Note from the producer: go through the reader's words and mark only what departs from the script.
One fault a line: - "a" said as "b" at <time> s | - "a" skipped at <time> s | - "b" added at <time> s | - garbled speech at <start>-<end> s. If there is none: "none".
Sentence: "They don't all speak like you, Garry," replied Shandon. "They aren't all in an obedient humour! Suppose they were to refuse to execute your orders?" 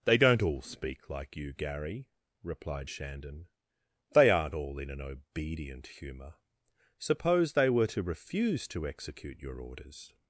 none